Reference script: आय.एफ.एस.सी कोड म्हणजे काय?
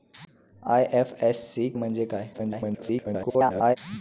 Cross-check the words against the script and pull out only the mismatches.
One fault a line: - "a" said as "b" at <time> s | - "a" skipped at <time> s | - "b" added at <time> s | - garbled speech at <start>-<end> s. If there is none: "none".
- "कोड" skipped at 1.7 s
- garbled speech at 2.3-3.8 s